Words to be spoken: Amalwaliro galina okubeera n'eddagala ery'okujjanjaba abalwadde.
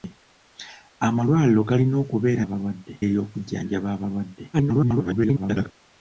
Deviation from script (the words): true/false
true